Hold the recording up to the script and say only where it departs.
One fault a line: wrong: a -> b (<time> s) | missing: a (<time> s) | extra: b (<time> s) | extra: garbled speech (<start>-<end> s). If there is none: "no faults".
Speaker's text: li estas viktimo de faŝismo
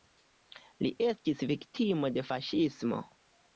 wrong: estas -> estis (1.1 s)